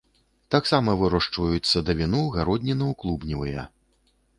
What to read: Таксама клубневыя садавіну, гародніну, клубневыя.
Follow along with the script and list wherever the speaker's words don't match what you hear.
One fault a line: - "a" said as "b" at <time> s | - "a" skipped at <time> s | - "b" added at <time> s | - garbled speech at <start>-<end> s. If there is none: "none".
- "клубневыя" said as "вырошчваюць" at 1.0 s